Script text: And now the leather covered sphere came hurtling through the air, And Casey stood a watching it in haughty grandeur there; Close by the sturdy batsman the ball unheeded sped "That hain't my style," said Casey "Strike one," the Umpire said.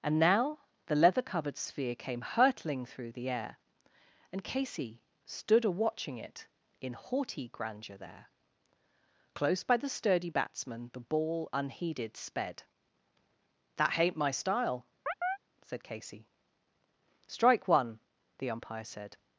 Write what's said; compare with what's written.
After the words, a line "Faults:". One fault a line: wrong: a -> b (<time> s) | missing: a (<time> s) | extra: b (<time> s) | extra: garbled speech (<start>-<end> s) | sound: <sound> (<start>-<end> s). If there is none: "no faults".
And now the leather covered sphere came hurtling through the air, And Casey stood a watching it in haughty grandeur there; Close by the sturdy batsman the ball unheeded sped "That hain't my style," said Casey "Strike one," the Umpire said.
Faults:
sound: chirp (15.1-15.4 s)